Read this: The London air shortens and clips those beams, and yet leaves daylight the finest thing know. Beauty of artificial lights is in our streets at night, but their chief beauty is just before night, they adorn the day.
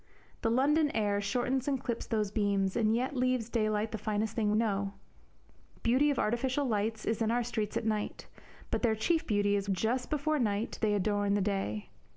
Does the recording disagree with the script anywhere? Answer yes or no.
no